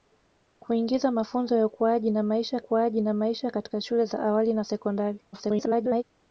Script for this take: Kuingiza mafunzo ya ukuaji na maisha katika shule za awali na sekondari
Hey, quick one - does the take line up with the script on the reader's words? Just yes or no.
no